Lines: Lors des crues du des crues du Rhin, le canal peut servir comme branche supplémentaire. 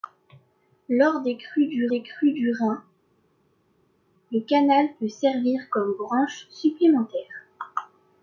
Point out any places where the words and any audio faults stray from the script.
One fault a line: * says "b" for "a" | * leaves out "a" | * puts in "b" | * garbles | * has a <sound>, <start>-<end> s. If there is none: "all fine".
all fine